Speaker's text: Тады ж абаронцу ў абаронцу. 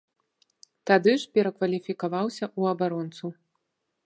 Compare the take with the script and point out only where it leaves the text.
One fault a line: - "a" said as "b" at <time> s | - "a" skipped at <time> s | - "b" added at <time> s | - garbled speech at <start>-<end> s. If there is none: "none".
- "абаронцу" said as "перакваліфікаваўся" at 1.4 s